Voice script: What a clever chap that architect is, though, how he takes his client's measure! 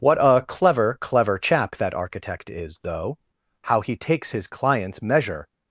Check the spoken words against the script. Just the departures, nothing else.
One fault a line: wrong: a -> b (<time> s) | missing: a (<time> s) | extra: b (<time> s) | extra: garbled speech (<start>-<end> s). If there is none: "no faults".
extra: clever (1.0 s)